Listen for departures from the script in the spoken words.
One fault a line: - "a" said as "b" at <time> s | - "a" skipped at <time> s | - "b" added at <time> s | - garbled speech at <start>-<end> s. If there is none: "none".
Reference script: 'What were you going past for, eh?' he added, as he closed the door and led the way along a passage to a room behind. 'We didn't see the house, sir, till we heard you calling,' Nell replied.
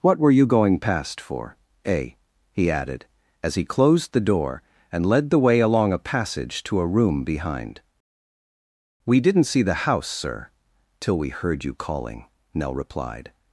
none